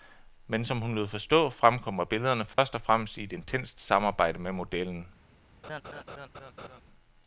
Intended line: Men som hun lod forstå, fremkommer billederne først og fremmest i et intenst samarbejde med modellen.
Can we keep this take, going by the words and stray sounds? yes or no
no